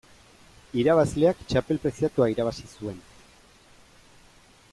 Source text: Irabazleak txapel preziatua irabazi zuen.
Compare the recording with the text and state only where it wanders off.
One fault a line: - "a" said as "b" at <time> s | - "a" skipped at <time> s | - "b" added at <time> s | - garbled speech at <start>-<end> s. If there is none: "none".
none